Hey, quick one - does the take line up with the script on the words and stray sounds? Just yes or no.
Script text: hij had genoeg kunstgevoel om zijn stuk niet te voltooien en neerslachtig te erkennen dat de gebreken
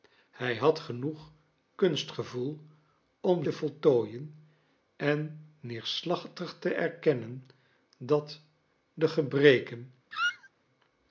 no